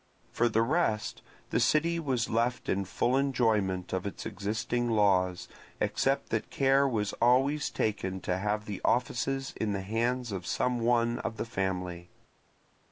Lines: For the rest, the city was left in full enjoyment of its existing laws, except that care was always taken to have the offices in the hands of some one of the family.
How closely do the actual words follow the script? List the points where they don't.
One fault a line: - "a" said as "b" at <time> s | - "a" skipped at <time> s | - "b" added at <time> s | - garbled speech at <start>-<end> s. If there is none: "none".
none